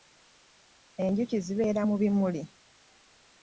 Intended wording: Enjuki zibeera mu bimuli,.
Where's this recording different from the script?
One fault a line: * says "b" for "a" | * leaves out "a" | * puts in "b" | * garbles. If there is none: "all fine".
all fine